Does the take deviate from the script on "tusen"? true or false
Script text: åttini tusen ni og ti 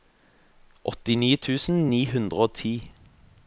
false